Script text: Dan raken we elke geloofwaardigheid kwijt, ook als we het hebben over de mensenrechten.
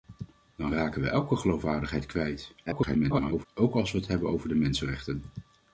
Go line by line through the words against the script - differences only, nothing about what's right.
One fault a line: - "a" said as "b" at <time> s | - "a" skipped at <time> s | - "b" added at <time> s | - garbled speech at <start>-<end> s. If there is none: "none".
- garbled speech at 2.7-3.5 s